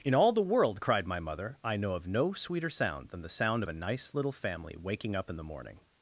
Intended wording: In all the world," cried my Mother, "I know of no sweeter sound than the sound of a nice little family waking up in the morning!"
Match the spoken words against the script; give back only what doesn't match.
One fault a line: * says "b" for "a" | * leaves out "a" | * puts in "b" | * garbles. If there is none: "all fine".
all fine